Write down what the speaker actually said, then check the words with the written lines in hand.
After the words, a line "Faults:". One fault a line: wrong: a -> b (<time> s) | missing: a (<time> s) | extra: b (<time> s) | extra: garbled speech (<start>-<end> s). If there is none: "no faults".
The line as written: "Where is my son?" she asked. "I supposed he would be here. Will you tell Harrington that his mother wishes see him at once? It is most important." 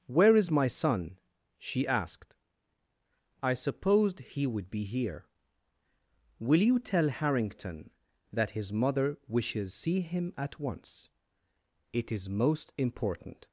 "Where is my son?" she asked. "I supposed he would be here. Will you tell Harrington that his mother wishes see him at once? It is most important."
Faults:
no faults